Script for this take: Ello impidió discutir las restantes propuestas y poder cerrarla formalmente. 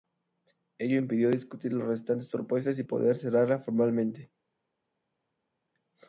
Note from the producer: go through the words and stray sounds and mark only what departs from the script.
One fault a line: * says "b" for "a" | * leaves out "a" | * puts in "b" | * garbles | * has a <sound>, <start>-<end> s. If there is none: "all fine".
all fine